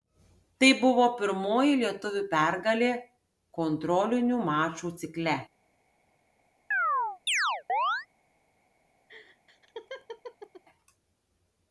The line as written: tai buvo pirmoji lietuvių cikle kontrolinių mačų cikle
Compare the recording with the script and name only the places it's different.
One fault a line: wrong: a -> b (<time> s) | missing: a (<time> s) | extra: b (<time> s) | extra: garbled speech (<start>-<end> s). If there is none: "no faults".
wrong: cikle -> pergalė (2.3 s)